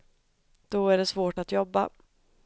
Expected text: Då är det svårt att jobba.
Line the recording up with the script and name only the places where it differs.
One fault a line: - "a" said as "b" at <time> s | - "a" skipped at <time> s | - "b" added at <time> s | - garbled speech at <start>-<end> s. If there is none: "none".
none